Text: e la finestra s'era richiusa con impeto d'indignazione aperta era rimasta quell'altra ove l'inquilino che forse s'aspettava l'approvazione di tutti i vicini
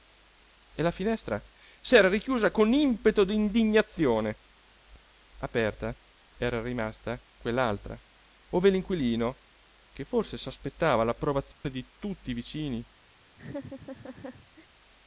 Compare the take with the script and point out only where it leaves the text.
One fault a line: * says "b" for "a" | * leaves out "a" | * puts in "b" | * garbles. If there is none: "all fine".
all fine